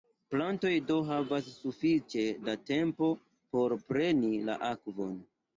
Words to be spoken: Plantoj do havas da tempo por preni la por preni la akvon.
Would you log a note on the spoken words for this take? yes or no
yes